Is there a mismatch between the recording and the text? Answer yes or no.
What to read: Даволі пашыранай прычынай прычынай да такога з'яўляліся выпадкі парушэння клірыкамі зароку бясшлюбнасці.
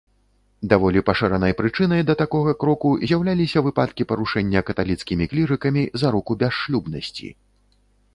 yes